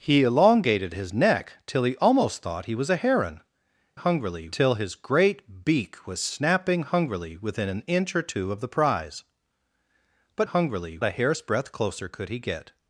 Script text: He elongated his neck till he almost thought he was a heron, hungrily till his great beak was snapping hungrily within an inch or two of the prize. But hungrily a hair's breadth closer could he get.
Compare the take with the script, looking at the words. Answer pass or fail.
pass